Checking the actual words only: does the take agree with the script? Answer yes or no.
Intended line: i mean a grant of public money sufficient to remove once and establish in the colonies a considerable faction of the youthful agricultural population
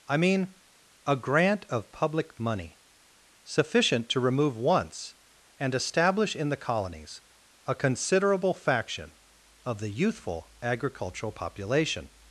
yes